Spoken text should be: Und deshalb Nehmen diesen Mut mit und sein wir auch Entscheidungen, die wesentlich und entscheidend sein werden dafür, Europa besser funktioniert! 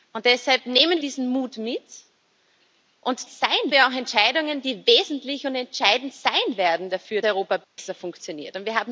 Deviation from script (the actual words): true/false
false